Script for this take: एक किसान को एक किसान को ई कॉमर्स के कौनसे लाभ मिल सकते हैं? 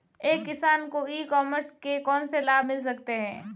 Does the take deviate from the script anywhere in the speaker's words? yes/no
yes